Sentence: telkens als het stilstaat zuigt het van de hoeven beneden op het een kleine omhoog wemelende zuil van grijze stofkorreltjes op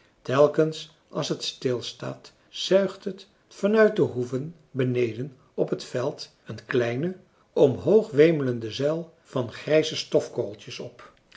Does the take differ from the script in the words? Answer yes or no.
yes